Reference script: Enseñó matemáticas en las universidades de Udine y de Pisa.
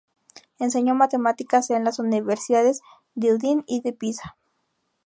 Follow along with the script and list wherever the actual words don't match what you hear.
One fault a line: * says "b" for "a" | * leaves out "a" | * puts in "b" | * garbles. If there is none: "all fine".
all fine